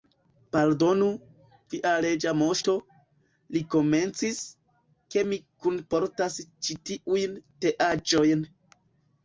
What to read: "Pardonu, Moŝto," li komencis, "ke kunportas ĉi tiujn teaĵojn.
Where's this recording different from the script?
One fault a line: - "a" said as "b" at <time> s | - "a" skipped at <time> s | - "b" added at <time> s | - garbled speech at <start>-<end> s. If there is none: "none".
- "via Reĝa" added at 1.7 s
- "mi" added at 5.3 s